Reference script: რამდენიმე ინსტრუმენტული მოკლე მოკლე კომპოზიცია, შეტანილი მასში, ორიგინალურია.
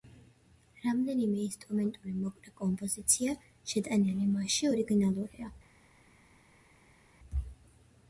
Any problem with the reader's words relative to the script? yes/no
yes